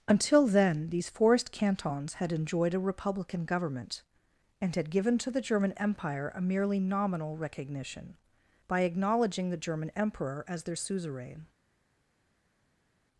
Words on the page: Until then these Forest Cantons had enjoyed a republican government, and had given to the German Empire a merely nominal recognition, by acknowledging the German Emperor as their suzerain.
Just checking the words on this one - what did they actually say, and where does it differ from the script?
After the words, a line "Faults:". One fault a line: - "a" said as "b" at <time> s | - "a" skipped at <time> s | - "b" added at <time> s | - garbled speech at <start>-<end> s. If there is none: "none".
Until then these Forest Cantons had enjoyed a republican government, and had given to the German Empire a merely nominal recognition, by acknowledging the German Emperor as their suzerain.
Faults:
none